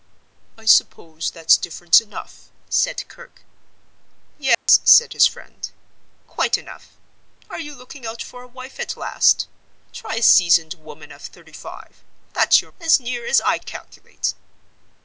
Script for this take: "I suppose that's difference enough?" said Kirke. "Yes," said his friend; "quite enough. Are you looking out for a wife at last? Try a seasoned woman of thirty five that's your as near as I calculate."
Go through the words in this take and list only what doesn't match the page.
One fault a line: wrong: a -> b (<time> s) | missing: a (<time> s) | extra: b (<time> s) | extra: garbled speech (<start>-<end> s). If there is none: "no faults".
no faults